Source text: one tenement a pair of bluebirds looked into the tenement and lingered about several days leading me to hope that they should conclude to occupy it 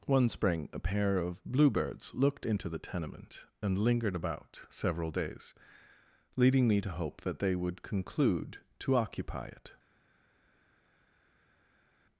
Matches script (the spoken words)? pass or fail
fail